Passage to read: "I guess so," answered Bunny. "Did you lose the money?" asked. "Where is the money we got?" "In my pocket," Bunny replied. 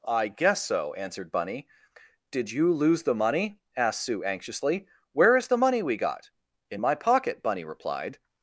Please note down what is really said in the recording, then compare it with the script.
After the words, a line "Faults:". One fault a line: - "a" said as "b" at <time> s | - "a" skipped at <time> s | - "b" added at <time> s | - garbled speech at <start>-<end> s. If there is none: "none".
"I guess so," answered Bunny. "Did you lose the money?" asked Sue anxiously. "Where is the money we got?" "In my pocket," Bunny replied.
Faults:
- "Sue anxiously" added at 4.0 s